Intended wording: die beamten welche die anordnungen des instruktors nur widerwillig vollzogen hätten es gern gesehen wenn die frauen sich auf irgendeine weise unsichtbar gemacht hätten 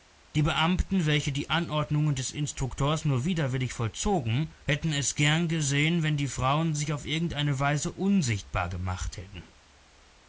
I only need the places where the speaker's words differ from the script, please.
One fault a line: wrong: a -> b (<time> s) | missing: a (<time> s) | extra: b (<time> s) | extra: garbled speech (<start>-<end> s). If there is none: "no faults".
no faults